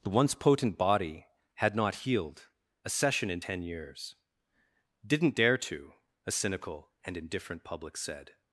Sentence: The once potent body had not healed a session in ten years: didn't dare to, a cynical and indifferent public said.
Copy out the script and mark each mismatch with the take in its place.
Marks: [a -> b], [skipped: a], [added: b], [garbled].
The once potent body had not healed a session in ten years: didn't dare to, a cynical and indifferent public said.